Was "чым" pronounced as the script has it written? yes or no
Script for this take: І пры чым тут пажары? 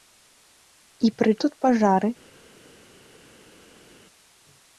no